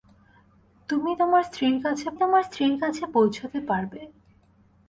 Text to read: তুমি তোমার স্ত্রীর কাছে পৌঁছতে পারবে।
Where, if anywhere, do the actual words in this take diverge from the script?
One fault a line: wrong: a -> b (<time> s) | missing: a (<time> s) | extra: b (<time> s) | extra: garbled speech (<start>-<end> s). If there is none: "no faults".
extra: তোমার স্ত্রীর কাছে (2.2 s)